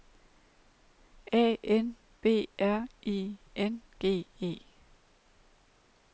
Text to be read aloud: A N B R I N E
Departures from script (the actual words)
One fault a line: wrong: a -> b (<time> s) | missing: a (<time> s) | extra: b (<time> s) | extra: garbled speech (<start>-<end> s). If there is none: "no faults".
extra: G (4.0 s)